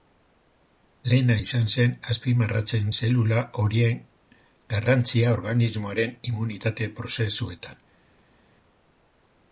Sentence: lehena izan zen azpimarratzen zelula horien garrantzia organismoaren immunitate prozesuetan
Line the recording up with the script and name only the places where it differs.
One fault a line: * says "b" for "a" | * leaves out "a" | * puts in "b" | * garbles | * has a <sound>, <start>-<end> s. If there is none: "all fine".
all fine